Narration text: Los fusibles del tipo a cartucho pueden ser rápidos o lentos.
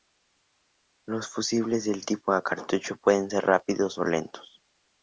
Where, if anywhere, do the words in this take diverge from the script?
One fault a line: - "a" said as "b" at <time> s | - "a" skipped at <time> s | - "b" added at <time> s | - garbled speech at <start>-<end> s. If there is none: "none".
none